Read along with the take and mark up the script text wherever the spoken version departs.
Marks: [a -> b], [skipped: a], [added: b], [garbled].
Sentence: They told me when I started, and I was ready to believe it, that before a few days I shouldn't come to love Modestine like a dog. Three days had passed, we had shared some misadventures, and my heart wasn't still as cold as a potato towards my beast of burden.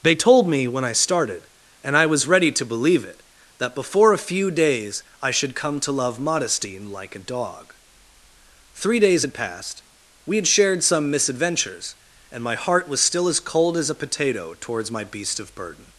They told me when I started, and I was ready to believe it, that before a few days I [shouldn't -> should] come to love Modestine like a dog. Three days had passed, we had shared some misadventures, and my heart [wasn't -> was] still as cold as a potato towards my beast of burden.